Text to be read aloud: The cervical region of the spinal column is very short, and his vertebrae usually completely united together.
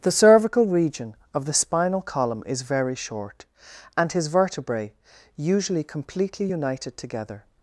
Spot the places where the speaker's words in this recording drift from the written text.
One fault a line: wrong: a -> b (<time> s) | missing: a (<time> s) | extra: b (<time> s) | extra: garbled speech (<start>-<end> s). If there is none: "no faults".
no faults